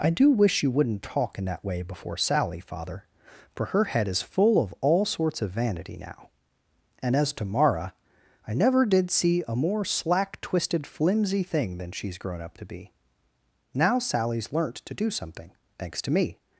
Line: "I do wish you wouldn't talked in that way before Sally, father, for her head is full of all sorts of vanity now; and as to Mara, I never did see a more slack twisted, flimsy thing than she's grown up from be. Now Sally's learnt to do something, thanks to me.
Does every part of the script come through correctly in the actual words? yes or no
no